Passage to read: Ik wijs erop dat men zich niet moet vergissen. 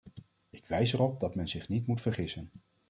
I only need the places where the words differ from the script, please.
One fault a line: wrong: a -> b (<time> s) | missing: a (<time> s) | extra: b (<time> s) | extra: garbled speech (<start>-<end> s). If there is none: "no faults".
no faults